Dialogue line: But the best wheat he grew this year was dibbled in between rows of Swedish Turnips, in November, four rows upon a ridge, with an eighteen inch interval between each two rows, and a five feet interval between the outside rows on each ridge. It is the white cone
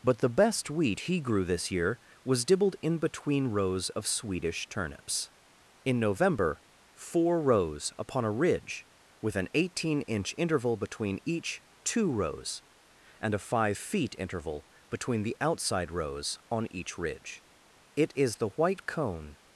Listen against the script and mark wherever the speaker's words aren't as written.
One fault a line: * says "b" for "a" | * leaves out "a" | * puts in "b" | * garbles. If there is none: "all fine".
all fine